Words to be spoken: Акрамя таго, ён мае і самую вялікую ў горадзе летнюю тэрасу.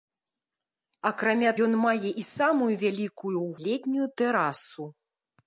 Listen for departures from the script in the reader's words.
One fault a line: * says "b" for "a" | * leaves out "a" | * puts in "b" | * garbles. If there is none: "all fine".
* leaves out "таго"
* leaves out "горадзе"